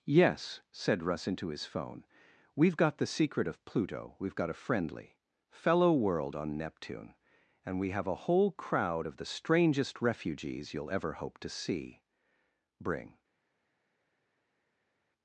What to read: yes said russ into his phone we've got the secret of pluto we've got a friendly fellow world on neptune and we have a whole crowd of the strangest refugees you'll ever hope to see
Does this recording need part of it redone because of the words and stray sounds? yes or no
yes